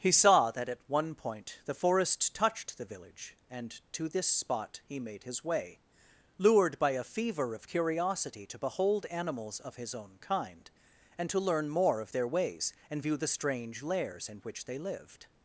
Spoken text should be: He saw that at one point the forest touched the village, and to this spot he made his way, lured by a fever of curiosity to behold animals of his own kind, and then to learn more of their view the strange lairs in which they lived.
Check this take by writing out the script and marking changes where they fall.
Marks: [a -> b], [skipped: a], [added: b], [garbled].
He saw that at one point the forest touched the village, and to this spot he made his way, lured by a fever of curiosity to behold animals of his own kind, and [skipped: then] to learn more of their [added: ways and] view the strange lairs in which they lived.